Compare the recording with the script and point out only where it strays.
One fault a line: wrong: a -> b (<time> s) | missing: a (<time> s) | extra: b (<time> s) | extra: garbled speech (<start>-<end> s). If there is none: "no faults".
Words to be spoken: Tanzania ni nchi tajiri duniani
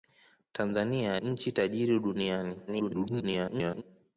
missing: ni (1.2 s)
extra: garbled speech (2.7-3.8 s)